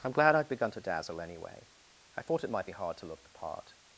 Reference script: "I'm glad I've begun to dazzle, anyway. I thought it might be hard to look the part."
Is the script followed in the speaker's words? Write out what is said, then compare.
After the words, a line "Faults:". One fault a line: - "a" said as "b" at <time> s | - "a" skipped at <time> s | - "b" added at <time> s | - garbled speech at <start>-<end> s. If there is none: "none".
"I'm glad I've begun to dazzle, anyway. I thought it might be hard to look the part."
Faults:
none